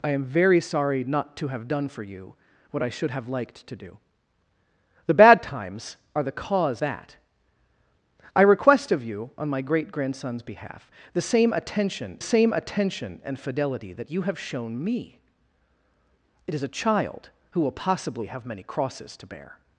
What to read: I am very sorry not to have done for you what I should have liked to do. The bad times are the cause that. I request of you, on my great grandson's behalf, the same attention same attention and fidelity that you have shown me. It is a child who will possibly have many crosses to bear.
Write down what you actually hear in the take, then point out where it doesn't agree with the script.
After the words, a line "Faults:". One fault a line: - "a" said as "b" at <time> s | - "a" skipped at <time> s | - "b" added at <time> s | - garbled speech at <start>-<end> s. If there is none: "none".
I am very sorry not to have done for you what I should have liked to do. The bad times are the cause that. I request of you, on my great grandson's behalf, the same attention same attention and fidelity that you have shown me. It is a child who will possibly have many crosses to bear.
Faults:
none